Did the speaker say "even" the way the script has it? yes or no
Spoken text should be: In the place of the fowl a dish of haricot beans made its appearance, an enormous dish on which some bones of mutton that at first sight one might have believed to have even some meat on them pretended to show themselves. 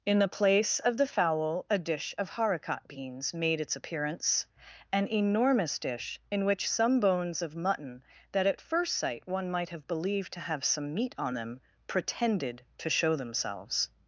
no